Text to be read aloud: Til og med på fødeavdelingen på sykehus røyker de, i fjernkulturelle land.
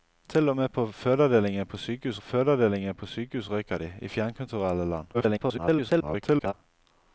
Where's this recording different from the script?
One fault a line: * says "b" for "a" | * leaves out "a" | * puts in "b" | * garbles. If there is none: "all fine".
* puts in "fødeavdelingen på sykehus"
* garbles